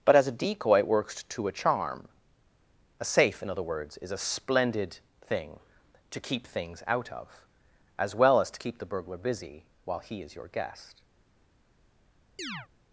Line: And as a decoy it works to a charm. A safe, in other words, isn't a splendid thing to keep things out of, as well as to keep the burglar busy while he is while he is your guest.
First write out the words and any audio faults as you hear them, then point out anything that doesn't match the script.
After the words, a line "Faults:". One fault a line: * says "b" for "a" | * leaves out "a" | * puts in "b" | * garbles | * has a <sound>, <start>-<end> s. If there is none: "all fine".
But as a decoy it works to a charm. A safe, in other words, is a splendid thing to keep things out of, as well as to keep the burglar busy while he is your guest.
Faults:
* says "But" for "And"
* says "is" for "isn't"
* leaves out "while he is"
* has a chirp, 12.4-12.7 s